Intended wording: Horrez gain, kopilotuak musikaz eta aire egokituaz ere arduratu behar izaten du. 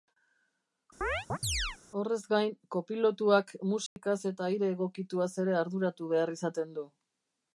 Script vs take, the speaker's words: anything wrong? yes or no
no